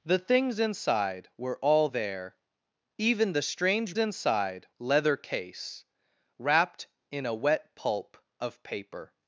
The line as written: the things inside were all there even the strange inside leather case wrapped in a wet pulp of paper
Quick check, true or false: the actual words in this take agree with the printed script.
true